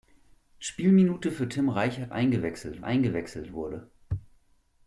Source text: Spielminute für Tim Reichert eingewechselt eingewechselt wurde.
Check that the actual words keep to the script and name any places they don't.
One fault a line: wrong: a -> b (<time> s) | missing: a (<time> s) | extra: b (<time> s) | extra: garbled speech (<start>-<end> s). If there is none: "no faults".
no faults